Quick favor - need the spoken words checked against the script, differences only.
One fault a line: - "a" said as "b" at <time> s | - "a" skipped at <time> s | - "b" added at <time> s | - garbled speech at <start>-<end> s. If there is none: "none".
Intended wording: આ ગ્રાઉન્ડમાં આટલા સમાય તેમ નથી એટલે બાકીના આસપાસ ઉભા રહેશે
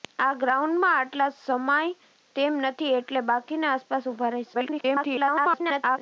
- garbled speech at 4.5-6.0 s